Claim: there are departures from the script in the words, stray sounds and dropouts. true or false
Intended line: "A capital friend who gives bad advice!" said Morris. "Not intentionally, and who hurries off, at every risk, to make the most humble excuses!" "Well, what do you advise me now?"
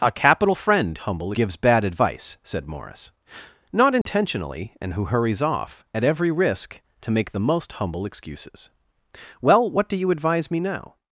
true